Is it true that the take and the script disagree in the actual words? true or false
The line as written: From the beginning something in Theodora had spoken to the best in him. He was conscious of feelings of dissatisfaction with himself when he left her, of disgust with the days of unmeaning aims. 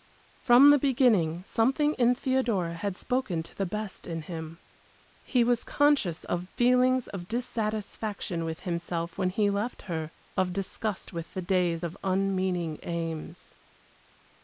false